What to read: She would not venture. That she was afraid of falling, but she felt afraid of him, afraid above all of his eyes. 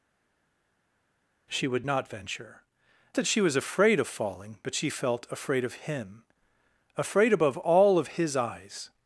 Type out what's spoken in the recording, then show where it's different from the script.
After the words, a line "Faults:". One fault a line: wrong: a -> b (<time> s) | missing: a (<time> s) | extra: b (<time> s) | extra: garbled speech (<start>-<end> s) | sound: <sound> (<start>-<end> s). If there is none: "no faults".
She would not venture. That she was afraid of falling, but she felt afraid of him, afraid above all of his eyes.
Faults:
no faults